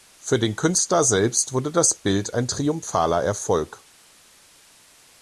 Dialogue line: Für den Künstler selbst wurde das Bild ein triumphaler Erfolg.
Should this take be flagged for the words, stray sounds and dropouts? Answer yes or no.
no